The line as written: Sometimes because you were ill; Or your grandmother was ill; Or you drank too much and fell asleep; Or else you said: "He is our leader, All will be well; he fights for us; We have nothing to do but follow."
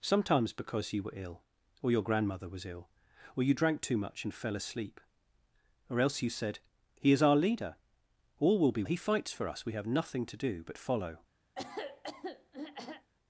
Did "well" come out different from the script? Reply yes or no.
yes